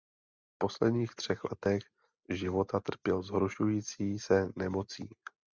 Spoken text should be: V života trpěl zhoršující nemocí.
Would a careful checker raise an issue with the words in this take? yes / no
yes